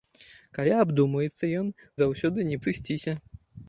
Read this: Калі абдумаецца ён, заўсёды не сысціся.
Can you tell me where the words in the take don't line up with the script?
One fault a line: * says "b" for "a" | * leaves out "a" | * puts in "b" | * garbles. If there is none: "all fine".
all fine